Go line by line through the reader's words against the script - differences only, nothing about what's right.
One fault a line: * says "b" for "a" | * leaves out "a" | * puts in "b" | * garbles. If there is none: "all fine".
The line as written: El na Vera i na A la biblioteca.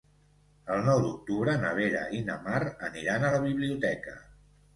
* puts in "nou d'octubre"
* puts in "Mar aniran"